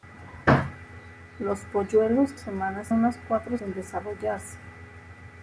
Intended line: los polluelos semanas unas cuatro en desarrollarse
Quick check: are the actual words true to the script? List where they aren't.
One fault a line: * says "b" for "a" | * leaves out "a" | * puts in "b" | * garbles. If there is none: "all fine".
all fine